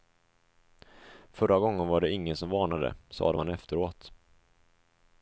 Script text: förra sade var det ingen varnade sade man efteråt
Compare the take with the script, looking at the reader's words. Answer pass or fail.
fail